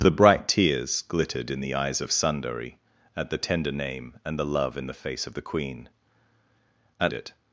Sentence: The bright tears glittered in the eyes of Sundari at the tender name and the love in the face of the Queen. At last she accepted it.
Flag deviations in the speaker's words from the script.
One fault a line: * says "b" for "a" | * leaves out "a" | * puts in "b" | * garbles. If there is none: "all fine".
* leaves out "last she accepted"